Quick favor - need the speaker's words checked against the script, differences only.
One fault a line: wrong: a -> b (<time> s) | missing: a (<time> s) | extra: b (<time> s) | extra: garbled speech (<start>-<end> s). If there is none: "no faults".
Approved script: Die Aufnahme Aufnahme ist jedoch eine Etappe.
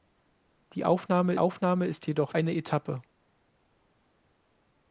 no faults